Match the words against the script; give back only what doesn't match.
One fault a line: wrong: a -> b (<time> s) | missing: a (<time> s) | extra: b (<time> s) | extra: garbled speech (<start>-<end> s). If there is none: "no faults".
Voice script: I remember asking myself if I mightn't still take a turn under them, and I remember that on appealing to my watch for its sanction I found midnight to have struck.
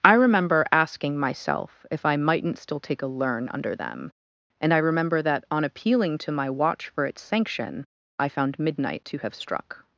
wrong: turn -> learn (3.1 s)